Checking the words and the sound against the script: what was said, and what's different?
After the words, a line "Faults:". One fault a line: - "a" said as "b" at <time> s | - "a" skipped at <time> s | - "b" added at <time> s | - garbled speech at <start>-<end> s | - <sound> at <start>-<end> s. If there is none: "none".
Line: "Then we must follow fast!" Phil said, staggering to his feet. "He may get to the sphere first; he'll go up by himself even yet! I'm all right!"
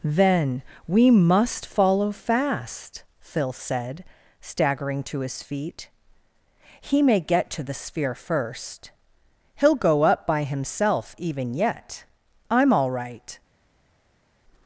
"Then we must follow fast!" Phil said, staggering to his feet. "He may get to the sphere first; he'll go up by himself even yet! I'm all right!"
Faults:
none